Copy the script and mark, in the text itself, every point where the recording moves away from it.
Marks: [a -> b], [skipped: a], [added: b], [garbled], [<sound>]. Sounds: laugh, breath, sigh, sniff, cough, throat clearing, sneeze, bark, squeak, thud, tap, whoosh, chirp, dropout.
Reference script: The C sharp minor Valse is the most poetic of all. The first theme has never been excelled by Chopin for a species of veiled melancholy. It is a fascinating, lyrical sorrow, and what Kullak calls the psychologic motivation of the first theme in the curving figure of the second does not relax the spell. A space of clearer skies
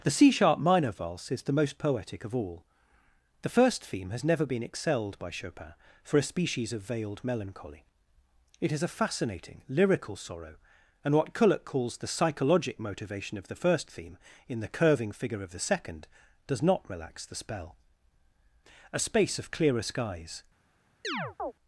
The C sharp minor Valse is the most poetic of all. The first theme has never been excelled by Chopin for a species of veiled melancholy. It is a fascinating, lyrical sorrow, and what Kullak calls the psychologic motivation of the first theme in the curving figure of the second does not relax the spell. A space of clearer skies [chirp]